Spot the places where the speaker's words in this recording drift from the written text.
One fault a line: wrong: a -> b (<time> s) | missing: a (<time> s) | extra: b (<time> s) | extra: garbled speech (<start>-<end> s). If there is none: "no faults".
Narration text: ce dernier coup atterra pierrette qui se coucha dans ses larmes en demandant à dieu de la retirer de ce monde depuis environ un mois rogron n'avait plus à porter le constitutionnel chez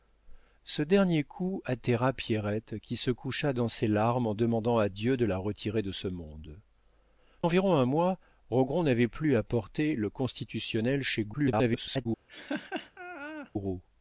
missing: depuis (6.6 s)
extra: garbled speech (11.3-12.1 s)